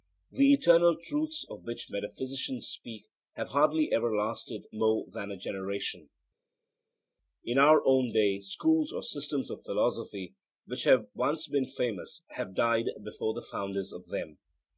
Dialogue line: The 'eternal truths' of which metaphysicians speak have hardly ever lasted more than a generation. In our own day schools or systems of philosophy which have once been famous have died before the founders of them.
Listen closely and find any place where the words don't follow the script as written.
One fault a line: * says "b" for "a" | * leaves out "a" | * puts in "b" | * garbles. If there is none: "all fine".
all fine